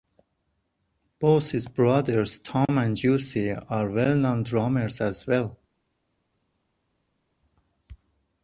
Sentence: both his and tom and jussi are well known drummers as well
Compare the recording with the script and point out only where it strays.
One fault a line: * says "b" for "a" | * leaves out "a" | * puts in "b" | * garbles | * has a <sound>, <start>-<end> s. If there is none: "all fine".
* says "brothers" for "and"